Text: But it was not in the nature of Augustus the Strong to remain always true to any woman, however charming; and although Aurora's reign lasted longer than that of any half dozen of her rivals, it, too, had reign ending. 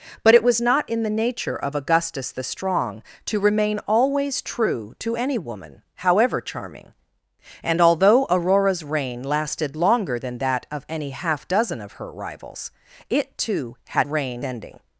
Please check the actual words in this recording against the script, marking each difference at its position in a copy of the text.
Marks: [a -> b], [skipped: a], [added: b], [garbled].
But it was not in the nature of Augustus the Strong to remain always true to any woman, however charming; and although Aurora's reign lasted longer than that of any half dozen of her rivals, it, too, had reign ending.